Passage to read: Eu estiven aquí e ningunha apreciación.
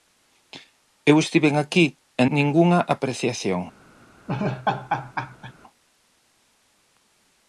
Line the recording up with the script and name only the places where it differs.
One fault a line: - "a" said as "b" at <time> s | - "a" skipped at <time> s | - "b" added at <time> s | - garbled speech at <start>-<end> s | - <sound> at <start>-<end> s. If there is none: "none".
- laugh at 4.3-5.5 s